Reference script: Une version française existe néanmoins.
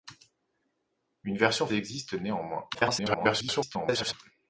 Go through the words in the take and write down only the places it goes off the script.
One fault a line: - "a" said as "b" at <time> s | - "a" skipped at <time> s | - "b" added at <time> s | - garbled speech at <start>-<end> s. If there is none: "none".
- "française" skipped at 1.7 s
- garbled speech at 2.7-4.1 s